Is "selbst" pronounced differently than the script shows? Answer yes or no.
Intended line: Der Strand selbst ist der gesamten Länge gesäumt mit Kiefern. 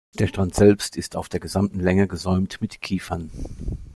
no